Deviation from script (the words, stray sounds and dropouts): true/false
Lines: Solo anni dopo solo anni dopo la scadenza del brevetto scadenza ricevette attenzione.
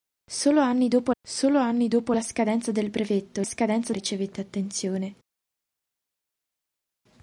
false